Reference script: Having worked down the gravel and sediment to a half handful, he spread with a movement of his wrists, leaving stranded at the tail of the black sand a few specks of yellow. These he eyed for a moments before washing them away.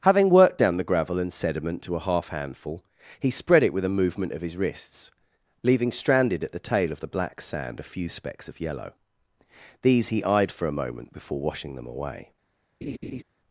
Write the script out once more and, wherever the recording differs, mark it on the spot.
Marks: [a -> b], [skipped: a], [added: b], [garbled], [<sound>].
Having worked down the gravel and sediment to a half handful, he spread [added: it] with a movement of his wrists, leaving stranded at the tail of the black sand a few specks of yellow. These he eyed for a [moments -> moment] before washing them away. [laugh]